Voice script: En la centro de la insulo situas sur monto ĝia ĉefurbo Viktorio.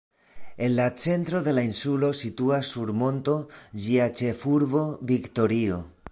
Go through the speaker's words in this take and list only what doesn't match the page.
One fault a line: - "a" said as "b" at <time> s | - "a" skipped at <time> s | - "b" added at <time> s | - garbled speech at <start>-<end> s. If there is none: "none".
none